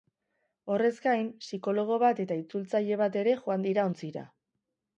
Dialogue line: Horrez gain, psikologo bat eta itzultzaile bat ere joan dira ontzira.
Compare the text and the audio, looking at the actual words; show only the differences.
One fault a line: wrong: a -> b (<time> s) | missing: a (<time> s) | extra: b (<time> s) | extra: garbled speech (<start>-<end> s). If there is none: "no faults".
no faults